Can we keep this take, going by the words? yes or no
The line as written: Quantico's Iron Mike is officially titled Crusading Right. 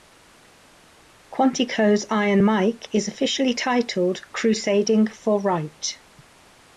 no